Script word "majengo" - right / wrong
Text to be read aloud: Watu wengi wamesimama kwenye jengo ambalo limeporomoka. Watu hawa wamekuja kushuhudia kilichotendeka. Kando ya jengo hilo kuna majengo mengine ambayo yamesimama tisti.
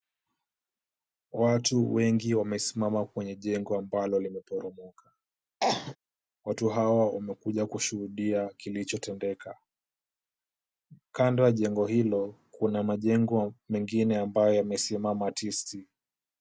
right